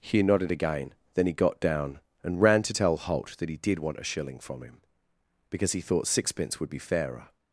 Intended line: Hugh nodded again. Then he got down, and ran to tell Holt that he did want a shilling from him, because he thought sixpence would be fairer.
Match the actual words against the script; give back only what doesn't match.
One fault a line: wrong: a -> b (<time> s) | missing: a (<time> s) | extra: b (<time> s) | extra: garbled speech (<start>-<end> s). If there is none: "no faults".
no faults